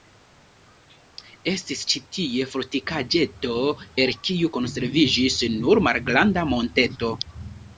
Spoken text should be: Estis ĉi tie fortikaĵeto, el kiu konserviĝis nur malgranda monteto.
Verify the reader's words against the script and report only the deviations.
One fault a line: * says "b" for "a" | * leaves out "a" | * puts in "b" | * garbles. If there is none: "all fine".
all fine